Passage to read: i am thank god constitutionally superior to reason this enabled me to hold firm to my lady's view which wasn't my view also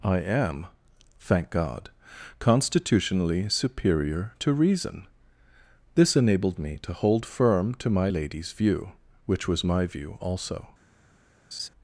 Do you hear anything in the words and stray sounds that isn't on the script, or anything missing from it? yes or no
yes